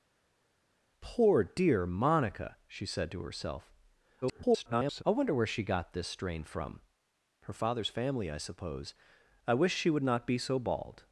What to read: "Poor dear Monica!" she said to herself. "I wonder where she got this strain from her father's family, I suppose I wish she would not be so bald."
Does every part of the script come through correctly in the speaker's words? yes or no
no